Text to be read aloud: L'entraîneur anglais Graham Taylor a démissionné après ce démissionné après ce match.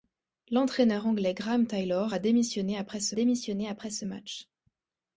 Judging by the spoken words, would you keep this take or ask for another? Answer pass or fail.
pass